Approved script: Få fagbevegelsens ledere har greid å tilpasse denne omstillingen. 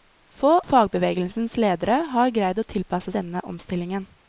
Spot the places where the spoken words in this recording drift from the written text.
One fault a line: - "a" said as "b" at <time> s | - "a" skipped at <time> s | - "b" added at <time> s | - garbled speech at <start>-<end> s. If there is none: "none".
none